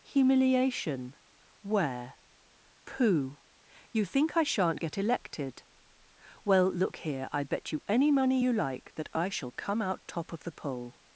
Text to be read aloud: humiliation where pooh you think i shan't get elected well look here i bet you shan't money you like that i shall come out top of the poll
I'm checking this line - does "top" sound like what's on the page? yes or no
yes